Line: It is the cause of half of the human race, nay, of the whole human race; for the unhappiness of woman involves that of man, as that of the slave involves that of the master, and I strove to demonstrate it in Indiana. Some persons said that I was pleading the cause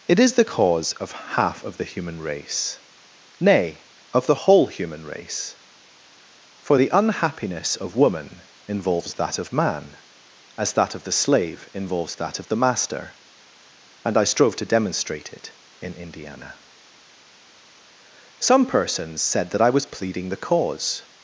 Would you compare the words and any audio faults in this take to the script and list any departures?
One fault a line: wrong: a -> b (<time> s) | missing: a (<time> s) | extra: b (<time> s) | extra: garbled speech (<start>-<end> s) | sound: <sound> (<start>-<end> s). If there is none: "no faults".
no faults